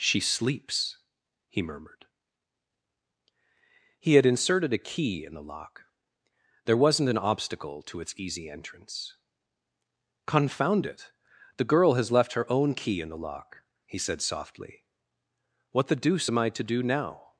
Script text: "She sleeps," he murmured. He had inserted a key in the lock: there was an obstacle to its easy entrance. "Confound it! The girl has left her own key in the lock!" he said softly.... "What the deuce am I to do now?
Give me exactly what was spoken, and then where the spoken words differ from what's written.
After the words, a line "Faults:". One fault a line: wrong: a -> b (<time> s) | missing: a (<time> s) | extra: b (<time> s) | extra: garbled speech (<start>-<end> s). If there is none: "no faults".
"She sleeps," he murmured. He had inserted a key in the lock: there wasn't an obstacle to its easy entrance. "Confound it! The girl has left her own key in the lock!" he said softly.... "What the deuce am I to do now?
Faults:
wrong: was -> wasn't (6.8 s)